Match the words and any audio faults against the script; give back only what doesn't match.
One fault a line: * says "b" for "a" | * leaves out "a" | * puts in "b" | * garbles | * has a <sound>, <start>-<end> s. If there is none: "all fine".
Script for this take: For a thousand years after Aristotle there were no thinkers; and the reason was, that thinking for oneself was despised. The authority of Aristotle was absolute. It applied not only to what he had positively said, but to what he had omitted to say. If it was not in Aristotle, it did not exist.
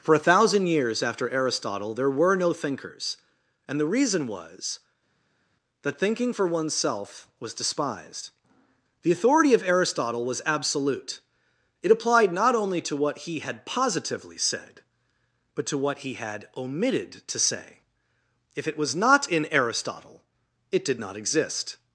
all fine